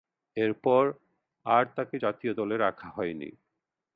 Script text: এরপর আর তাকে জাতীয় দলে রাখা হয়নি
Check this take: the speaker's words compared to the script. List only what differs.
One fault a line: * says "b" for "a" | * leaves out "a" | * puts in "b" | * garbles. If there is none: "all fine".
all fine